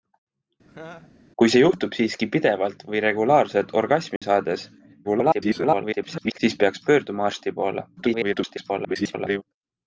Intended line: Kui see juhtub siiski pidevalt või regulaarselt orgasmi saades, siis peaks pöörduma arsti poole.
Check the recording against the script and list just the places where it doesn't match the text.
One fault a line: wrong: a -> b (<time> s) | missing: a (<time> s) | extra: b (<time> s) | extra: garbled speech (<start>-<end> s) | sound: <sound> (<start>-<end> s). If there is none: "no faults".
sound: laugh (0.7-1.1 s)
sound: dropout (4.2-4.2 s)
extra: garbled speech (5.0-6.4 s)
extra: garbled speech (8.0-9.4 s)